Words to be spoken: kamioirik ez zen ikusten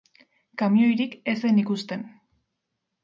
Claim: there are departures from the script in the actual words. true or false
false